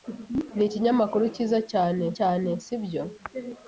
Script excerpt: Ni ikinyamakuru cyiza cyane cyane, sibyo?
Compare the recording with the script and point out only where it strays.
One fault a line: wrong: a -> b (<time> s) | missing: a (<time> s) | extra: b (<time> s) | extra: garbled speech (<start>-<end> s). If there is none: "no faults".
no faults